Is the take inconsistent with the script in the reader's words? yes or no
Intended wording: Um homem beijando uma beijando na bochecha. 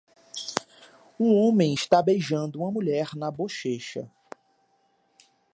yes